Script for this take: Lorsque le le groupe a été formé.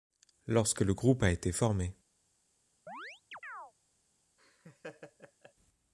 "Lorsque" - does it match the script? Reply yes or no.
yes